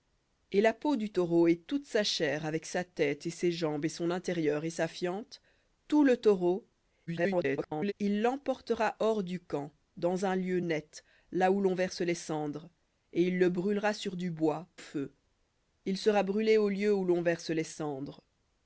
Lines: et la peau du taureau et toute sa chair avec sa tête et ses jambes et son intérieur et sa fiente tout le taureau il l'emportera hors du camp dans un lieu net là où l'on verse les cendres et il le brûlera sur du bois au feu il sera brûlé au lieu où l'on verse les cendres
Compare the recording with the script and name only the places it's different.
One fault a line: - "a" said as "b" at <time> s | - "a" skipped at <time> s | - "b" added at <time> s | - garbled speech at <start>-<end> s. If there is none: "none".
- garbled speech at 7.1-7.9 s
- "au" skipped at 14.7 s